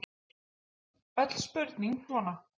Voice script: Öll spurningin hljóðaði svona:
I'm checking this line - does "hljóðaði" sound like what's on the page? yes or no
no